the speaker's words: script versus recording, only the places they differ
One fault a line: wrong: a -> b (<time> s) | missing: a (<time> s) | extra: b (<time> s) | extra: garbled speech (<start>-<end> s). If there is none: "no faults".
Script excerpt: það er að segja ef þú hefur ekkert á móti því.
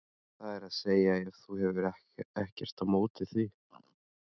no faults